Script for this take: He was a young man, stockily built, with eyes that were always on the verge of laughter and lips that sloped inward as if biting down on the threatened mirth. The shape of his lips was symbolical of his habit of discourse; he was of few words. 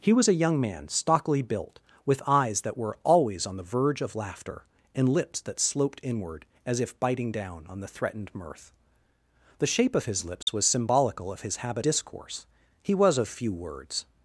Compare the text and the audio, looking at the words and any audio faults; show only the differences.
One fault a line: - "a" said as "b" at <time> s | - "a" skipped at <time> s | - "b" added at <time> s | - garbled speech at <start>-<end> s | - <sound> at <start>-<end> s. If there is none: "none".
- dropout at 10.4-10.5 s
- "of" skipped at 11.8 s